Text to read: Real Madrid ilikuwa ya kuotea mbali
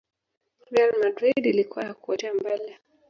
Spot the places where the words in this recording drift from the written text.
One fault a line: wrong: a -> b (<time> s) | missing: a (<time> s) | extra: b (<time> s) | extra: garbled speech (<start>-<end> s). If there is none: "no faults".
no faults